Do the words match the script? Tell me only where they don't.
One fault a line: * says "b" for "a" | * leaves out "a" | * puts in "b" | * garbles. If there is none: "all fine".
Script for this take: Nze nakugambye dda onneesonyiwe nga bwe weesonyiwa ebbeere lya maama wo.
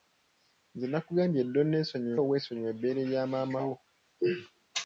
* leaves out "nga"